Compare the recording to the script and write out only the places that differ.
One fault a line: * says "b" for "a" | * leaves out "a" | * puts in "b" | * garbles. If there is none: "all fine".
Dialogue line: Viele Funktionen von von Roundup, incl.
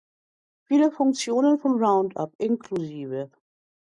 * leaves out "von"